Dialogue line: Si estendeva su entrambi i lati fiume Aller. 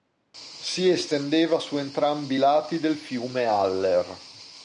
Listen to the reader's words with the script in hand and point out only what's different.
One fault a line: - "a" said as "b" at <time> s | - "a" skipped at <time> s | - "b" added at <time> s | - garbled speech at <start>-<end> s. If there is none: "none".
- "del" added at 2.8 s